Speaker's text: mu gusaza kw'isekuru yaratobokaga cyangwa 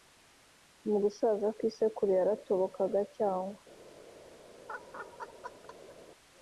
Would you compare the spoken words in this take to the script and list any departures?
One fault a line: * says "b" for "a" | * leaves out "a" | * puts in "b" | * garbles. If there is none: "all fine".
all fine